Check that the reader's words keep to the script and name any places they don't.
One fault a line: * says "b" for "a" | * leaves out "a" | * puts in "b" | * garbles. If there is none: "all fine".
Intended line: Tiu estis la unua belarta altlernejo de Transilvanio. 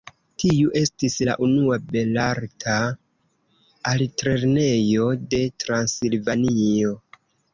all fine